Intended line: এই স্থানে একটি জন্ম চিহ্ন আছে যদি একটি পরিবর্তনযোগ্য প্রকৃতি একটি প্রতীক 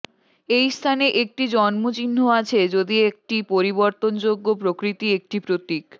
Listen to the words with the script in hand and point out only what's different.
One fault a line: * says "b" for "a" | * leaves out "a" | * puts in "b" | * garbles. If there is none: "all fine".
all fine